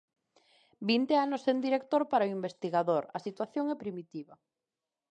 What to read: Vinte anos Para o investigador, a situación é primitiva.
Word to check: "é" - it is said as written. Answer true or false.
true